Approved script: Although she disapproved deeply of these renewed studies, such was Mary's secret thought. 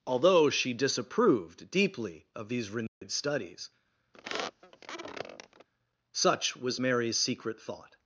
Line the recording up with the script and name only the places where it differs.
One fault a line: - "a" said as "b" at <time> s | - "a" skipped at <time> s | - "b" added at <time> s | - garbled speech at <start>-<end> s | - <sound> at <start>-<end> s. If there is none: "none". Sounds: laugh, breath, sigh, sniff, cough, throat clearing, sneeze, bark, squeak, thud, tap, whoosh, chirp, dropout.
- dropout at 2.9-3.0 s
- squeak at 4.1-5.7 s